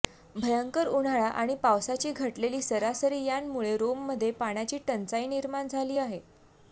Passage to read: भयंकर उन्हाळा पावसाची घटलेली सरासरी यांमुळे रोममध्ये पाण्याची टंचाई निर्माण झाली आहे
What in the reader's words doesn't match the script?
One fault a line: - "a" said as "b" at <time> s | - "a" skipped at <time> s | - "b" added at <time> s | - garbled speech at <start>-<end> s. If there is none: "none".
- "आणि" added at 1.3 s